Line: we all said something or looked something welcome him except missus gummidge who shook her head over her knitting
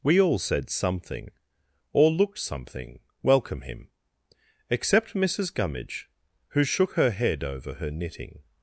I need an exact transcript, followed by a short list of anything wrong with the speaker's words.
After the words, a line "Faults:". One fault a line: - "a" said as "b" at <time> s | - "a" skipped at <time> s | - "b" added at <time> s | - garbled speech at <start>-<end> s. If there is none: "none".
we all said something or looked something welcome him except missus gummidge who shook her head over her knitting
Faults:
none